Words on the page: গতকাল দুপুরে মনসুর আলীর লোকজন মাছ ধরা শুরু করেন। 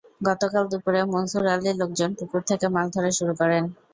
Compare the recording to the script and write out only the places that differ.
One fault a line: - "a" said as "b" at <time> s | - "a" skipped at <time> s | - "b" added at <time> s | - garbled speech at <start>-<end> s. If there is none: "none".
- "পুকুর থেকে" added at 2.2 s